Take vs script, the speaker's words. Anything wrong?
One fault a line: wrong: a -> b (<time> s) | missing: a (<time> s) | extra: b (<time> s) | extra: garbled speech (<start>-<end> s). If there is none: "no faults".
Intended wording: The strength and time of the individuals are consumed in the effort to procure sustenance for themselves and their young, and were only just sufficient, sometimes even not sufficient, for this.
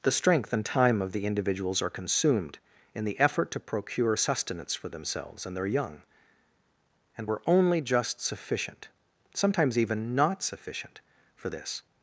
no faults